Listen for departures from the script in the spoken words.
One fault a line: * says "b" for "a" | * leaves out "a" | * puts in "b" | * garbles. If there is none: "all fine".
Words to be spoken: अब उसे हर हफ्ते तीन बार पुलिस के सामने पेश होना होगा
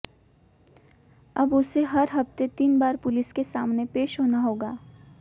all fine